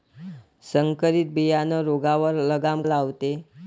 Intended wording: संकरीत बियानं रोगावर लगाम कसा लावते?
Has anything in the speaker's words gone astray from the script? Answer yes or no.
yes